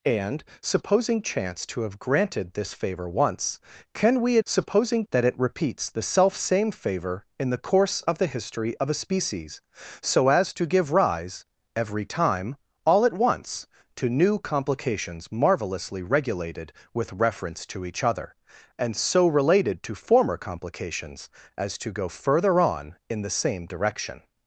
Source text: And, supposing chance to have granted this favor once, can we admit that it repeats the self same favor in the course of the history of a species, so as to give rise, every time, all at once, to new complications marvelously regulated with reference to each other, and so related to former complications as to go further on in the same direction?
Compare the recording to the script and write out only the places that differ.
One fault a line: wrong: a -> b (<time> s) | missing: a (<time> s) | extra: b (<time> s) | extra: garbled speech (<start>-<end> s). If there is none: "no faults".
wrong: admit -> supposing (4.4 s)